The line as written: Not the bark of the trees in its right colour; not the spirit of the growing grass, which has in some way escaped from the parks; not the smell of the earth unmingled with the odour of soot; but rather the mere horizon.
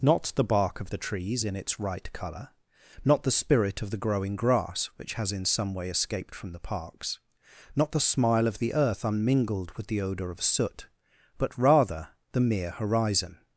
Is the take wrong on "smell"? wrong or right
wrong